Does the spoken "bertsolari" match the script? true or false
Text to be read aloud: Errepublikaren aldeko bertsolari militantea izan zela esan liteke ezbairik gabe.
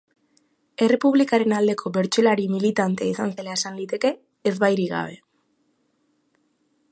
true